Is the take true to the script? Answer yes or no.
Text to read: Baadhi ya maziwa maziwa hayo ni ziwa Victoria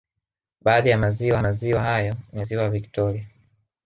yes